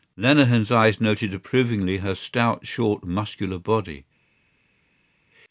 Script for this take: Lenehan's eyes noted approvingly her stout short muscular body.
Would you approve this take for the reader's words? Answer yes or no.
yes